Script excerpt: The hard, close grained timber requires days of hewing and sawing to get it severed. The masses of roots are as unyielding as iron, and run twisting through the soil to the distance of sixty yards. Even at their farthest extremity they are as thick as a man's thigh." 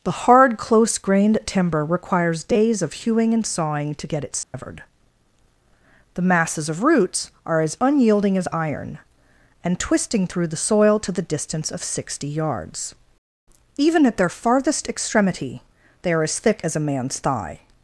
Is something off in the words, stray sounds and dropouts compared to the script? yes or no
yes